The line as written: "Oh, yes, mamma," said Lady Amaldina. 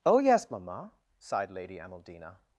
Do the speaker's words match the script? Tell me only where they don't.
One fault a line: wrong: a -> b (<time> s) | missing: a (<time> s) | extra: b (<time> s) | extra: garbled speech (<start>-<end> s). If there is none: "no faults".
wrong: said -> sighed (1.2 s)